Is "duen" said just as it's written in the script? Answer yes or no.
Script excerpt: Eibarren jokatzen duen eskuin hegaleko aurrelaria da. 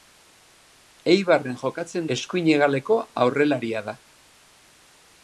no